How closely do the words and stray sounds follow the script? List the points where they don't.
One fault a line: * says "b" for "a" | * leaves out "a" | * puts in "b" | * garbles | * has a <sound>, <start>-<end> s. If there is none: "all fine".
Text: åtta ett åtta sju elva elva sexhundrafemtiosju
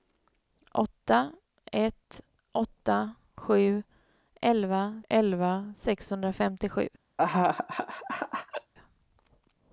* has a laugh, 7.2-8.7 s